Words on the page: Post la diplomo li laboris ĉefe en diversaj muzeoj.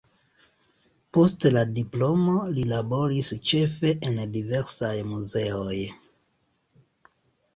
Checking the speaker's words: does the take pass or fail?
pass